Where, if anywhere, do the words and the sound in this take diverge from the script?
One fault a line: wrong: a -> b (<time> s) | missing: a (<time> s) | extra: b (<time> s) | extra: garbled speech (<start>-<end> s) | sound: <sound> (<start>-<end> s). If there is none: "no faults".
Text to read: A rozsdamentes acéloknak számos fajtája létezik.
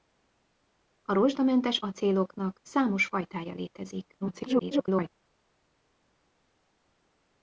extra: garbled speech (4.2-5.1 s)